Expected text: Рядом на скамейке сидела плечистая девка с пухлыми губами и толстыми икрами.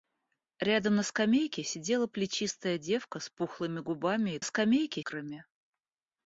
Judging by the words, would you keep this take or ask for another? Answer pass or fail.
fail